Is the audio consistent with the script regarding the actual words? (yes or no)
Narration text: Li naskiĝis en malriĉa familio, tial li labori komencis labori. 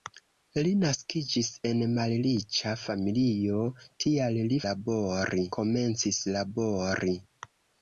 yes